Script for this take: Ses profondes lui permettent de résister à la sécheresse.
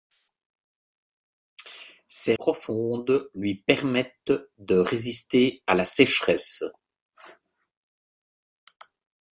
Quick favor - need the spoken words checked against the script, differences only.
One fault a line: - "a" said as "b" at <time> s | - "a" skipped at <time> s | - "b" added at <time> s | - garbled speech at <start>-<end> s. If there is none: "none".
none